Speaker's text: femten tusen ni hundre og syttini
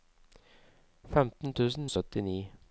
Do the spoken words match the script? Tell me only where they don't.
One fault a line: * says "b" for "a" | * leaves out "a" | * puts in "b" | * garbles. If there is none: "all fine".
* leaves out "ni hundre og"